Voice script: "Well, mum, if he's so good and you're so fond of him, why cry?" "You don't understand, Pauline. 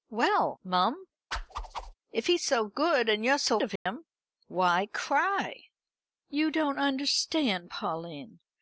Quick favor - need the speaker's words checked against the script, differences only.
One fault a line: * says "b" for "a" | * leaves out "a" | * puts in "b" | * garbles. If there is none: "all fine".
* leaves out "fond"